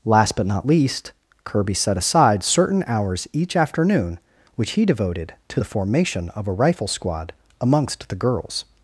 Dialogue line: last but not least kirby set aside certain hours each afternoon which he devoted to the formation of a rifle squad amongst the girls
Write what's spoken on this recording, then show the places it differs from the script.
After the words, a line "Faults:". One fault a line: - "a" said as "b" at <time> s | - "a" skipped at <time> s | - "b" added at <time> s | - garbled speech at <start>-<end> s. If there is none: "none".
last but not least kirby set aside certain hours each afternoon which he devoted to the formation of a rifle squad amongst the girls
Faults:
none